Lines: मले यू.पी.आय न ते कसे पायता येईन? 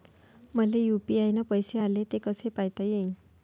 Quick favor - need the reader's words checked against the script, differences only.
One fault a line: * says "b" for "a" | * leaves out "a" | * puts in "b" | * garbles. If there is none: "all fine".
* puts in "पैसे आले"